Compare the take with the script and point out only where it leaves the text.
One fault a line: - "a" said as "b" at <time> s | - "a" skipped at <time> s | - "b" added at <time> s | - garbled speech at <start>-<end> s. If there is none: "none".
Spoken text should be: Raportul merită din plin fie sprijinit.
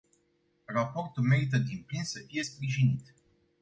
- "să" added at 2.0 s